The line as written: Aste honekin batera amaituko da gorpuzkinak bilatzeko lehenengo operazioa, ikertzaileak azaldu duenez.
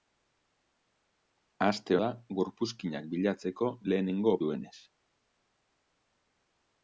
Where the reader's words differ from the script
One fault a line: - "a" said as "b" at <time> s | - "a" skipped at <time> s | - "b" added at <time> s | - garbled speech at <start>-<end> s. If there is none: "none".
- "honekin batera amaituko" skipped at 2.0 s
- "operazioa ikertzaileak azaldu" skipped at 4.4 s